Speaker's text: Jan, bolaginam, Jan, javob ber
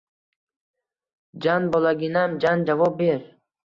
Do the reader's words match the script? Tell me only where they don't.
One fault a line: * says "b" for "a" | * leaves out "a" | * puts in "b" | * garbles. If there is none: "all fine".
all fine